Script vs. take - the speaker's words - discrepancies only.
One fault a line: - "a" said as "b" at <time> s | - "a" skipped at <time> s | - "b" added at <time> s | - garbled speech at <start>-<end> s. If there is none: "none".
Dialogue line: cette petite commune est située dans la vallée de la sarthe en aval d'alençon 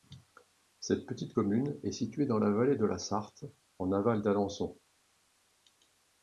none